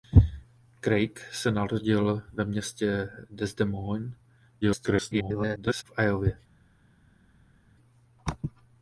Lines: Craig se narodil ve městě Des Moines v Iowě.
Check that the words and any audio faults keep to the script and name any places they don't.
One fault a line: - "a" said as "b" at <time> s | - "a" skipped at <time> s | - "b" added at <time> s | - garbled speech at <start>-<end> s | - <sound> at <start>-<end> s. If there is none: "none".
- garbled speech at 4.6-5.8 s